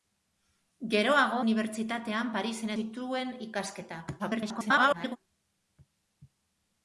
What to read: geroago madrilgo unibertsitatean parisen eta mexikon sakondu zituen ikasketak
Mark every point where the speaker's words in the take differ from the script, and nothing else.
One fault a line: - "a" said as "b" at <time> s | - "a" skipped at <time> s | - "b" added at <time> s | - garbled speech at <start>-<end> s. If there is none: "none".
- "madrilgo" skipped at 1.4 s
- "eta mexikon sakondu" skipped at 2.7 s
- garbled speech at 4.2-5.2 s